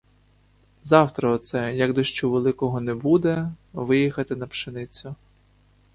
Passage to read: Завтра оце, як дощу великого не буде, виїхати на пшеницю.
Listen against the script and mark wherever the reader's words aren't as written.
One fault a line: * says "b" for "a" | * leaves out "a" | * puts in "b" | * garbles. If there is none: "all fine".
all fine